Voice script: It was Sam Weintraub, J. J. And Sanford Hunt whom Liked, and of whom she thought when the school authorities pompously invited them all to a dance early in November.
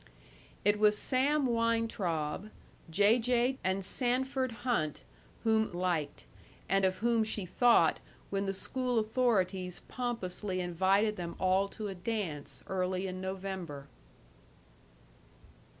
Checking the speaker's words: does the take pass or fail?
pass